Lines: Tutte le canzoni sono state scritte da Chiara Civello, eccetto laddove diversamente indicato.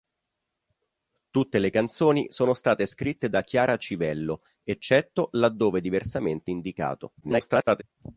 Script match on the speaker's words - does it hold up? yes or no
no